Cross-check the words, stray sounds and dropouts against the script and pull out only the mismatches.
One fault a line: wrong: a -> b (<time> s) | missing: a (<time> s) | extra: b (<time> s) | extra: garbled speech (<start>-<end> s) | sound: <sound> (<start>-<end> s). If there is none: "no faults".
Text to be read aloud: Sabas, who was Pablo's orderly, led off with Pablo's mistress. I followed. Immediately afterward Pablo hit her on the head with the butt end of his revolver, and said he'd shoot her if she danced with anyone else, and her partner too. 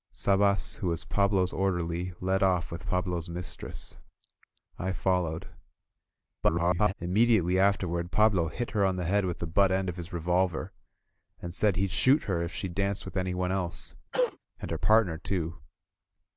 extra: garbled speech (6.4-6.9 s)
sound: cough (14.1-14.4 s)